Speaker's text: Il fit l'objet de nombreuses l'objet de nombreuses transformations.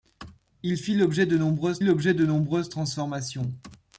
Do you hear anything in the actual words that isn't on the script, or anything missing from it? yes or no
no